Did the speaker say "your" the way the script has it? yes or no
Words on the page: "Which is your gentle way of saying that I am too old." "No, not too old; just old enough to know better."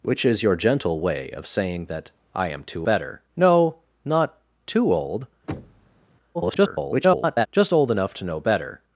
yes